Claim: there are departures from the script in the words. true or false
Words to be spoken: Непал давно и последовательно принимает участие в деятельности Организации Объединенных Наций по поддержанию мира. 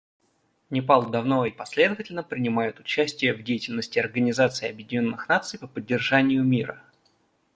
false